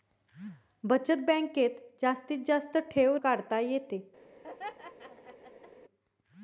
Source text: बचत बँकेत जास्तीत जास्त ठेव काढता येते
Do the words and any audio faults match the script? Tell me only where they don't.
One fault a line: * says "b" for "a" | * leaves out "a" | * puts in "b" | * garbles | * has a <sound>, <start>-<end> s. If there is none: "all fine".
* has a laugh, 4.4-5.7 s